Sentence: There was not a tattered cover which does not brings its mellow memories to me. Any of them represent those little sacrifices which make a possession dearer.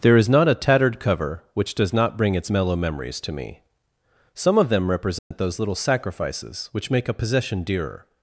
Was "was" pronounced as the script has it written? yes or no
no